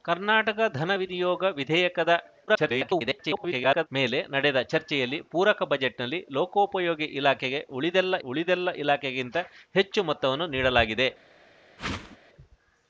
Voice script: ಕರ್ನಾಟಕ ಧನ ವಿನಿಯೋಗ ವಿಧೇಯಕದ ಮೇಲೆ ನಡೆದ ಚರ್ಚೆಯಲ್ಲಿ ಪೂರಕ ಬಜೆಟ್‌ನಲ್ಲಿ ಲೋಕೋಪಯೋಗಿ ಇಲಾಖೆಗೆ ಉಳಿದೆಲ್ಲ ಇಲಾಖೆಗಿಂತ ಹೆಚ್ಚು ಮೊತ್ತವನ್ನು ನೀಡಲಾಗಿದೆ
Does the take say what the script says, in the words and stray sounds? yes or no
no